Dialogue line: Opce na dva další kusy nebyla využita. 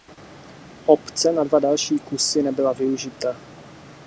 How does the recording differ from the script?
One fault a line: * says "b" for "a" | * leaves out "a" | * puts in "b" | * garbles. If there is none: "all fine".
all fine